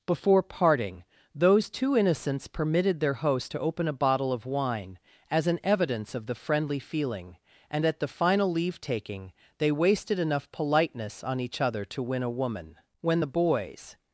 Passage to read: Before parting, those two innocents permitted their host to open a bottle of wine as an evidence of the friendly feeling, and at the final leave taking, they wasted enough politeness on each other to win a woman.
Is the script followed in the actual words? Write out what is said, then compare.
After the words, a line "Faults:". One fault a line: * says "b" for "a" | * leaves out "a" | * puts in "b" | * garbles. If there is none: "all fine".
Before parting, those two innocents permitted their host to open a bottle of wine as an evidence of the friendly feeling, and at the final leave taking, they wasted enough politeness on each other to win a woman. "When the boys
Faults:
* puts in "When the boys"